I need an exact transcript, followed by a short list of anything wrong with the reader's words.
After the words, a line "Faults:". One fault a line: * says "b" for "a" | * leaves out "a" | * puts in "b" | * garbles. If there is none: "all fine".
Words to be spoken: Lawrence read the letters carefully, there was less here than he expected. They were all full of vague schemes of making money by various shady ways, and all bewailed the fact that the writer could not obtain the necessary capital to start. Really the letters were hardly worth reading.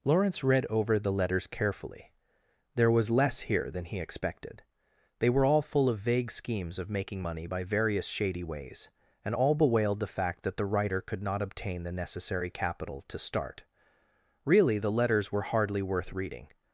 Lawrence read over the letters carefully, there was less here than he expected. They were all full of vague schemes of making money by various shady ways, and all bewailed the fact that the writer could not obtain the necessary capital to start. Really the letters were hardly worth reading.
Faults:
* puts in "over"